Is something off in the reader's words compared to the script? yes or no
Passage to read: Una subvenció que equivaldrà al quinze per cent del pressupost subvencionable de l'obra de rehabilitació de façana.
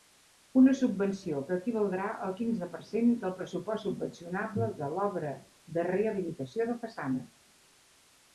no